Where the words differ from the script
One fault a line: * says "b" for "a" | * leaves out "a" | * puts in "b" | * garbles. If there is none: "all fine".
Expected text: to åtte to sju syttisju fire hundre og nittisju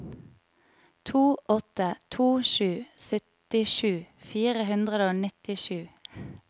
all fine